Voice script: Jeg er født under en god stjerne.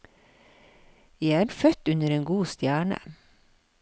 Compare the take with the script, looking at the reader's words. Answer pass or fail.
pass